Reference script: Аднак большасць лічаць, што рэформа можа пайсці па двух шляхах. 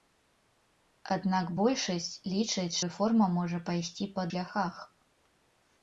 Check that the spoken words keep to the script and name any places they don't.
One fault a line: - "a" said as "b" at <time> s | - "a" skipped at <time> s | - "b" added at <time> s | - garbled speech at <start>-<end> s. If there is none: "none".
- "што" skipped at 2.8 s
- "двух" skipped at 4.3 s